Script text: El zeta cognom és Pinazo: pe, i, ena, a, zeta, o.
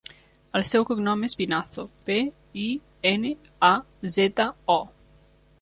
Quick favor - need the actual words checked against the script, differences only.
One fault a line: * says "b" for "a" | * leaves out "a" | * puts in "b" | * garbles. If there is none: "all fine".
* says "seu" for "zeta"